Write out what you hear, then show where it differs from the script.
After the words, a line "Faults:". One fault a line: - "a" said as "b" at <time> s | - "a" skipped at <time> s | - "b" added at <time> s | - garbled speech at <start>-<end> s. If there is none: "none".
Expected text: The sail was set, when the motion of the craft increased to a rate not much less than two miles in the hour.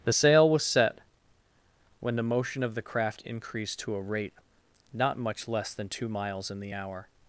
The sail was set, when the motion of the craft increased to a rate not much less than two miles in the hour.
Faults:
none